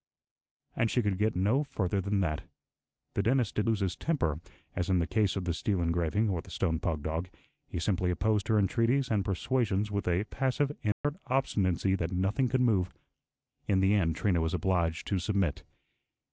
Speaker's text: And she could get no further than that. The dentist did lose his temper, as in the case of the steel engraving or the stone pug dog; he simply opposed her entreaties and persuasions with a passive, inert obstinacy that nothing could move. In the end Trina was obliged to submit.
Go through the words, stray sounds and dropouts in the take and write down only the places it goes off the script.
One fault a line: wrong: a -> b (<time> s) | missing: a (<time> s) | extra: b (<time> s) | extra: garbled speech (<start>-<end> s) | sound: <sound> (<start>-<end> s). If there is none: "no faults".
sound: dropout (10.9-11.0 s)